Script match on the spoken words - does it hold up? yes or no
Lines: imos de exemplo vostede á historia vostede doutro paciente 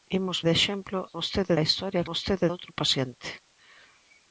yes